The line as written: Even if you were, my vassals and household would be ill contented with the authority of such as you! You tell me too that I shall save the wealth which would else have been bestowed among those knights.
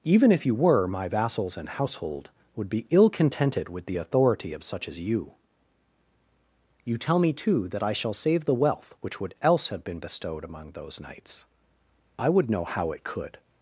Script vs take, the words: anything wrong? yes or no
yes